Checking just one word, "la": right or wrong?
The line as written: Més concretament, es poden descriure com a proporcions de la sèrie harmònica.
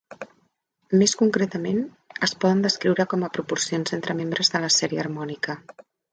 right